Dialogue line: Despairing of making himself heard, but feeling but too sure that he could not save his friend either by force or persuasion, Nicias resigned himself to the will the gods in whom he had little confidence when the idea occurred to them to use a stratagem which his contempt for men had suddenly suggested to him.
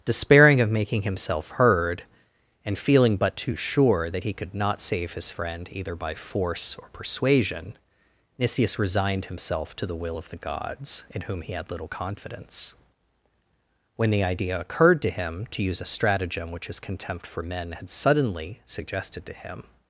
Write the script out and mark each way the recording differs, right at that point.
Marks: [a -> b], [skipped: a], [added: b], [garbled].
Despairing of making himself heard, [but -> and] feeling but too sure that he could not save his friend either by force or persuasion, Nicias resigned himself to the will [added: of] the gods in whom he had little confidence when the idea occurred to [them -> him] to use a stratagem which his contempt for men had suddenly suggested to him.